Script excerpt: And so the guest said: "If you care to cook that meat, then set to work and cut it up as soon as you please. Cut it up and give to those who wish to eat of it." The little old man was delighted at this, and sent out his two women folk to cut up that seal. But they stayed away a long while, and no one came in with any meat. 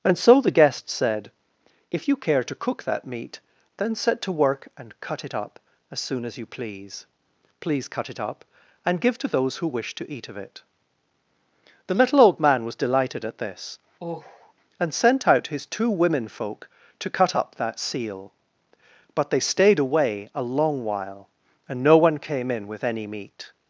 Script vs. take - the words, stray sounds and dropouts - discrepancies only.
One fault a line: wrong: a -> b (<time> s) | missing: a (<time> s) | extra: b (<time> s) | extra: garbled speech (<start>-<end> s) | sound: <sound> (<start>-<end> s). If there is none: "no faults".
extra: please (7.6 s)
sound: sigh (14.0-14.5 s)